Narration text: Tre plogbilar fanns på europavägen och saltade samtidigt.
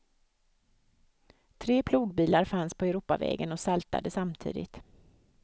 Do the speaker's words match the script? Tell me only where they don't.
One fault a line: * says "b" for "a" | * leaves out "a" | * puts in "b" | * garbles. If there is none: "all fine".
all fine